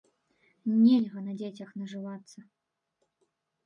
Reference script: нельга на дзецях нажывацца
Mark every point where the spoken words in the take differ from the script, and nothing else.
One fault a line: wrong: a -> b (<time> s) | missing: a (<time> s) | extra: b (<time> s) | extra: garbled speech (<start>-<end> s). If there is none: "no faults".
no faults